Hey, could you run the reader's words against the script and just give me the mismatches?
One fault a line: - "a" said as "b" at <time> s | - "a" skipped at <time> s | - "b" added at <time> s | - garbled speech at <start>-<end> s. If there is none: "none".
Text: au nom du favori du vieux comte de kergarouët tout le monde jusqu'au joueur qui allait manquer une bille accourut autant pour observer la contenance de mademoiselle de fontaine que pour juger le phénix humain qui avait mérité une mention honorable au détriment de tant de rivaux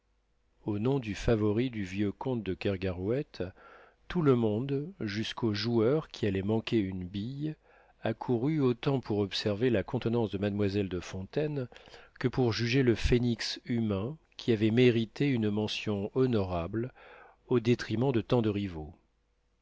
none